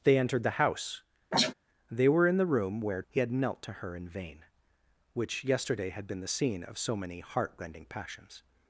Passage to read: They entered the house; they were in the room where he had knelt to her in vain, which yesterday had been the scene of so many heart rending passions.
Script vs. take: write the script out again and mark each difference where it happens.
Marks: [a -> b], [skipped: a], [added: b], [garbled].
They entered the house; they were in the room where he had knelt to her in vain, which yesterday had been the scene of so many heart rending passions.